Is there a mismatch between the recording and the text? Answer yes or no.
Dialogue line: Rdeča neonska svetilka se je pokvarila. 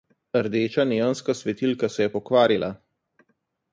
no